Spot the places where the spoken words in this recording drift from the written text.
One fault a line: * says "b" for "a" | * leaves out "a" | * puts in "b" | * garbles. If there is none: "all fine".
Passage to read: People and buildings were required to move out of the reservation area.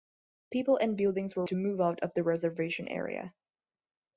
* leaves out "required"